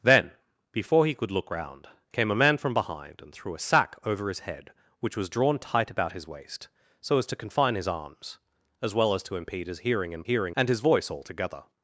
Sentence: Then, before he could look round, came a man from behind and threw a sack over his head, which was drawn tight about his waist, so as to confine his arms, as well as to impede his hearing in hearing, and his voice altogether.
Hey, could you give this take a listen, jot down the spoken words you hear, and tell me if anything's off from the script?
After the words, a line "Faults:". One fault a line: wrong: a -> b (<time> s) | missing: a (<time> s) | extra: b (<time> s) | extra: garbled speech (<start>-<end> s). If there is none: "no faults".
Then, before he could look round, came a man from behind and threw a sack over his head, which was drawn tight about his waist, so as to confine his arms, as well as to impede his hearing in hearing, and his voice altogether.
Faults:
no faults